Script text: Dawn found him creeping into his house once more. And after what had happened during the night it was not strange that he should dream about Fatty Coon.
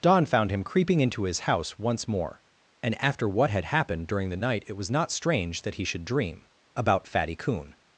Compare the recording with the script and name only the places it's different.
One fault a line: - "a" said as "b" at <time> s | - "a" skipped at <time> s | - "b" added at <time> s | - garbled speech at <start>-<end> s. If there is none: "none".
none